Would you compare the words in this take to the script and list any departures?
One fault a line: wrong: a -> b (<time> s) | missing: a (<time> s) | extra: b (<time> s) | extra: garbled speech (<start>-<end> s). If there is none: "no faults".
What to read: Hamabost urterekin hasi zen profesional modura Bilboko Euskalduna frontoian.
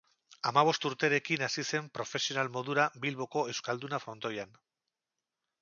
no faults